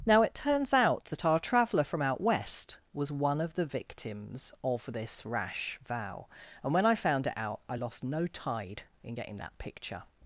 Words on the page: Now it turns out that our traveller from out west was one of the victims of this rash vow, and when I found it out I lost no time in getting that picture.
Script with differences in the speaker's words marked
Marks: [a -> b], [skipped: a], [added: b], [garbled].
Now it turns out that our traveller from out west was one of the victims of this rash vow, and when I found it out I lost no [time -> tide] in getting that picture.